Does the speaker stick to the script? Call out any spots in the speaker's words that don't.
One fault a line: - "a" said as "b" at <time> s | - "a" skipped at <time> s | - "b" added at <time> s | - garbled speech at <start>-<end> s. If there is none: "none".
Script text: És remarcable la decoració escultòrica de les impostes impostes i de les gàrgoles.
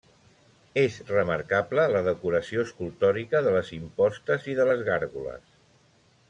- "impostes" skipped at 4.5 s